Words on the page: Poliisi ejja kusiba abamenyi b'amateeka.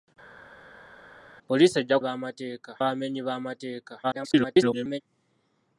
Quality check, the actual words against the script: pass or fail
fail